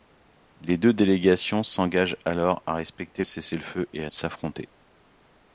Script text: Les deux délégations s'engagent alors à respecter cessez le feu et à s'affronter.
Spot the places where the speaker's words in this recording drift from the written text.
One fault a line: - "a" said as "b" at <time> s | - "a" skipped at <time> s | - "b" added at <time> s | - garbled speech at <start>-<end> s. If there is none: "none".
none